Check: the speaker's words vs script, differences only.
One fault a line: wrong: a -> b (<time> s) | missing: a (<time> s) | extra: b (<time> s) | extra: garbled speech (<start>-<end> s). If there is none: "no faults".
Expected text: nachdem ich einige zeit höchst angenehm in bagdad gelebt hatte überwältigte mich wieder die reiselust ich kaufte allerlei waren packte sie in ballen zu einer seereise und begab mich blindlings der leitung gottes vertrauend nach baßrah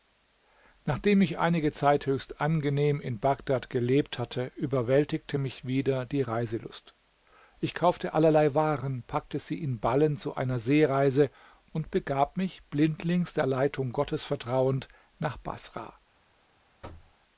no faults